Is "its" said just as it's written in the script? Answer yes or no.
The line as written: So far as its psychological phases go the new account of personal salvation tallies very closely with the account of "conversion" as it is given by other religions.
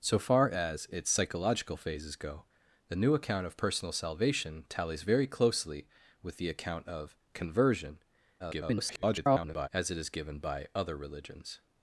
yes